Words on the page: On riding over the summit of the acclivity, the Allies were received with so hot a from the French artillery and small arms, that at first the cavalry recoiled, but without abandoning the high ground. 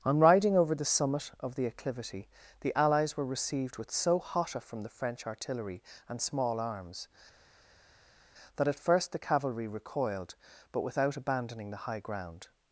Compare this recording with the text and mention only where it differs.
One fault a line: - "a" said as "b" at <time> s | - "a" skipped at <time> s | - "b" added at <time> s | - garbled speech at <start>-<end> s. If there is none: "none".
none